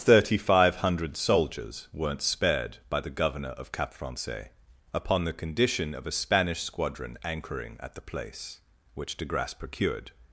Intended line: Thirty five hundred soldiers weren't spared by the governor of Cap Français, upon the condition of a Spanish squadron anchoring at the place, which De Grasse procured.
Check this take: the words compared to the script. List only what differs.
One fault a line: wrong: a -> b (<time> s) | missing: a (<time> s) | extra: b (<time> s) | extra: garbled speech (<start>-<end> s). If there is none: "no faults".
no faults